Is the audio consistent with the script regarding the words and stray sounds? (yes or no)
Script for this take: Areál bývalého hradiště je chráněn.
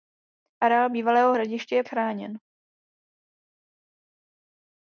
yes